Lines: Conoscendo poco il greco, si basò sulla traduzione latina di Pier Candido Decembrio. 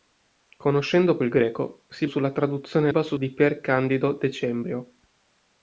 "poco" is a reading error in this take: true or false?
true